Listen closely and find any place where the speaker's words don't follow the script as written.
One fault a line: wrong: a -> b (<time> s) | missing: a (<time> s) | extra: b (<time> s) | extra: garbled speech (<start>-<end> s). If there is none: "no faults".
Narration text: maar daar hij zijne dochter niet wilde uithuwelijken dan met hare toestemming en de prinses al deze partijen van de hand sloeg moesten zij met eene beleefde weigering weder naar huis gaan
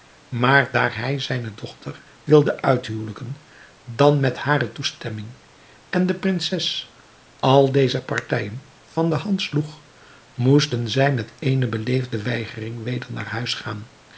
missing: niet (2.0 s)